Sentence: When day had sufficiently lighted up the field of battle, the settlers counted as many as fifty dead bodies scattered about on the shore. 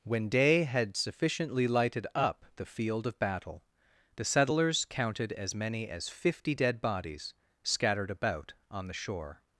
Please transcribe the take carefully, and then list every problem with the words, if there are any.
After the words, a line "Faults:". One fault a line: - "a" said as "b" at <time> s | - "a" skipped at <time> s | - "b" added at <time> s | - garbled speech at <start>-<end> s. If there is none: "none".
When day had sufficiently lighted up the field of battle, the settlers counted as many as fifty dead bodies scattered about on the shore.
Faults:
none